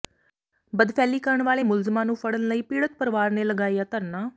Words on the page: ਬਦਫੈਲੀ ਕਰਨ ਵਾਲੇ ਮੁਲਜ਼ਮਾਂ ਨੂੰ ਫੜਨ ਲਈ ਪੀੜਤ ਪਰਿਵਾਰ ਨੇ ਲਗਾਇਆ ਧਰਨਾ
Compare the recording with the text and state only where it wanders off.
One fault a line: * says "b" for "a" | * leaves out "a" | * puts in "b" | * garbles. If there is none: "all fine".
all fine